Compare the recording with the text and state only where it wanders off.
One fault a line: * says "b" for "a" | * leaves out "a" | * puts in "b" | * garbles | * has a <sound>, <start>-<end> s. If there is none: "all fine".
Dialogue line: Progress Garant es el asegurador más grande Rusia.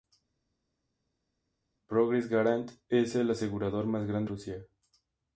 all fine